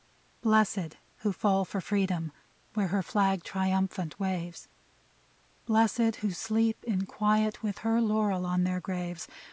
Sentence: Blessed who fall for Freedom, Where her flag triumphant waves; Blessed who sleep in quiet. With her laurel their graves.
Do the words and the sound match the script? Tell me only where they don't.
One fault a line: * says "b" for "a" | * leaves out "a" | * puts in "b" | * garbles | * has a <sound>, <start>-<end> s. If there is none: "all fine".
* puts in "on"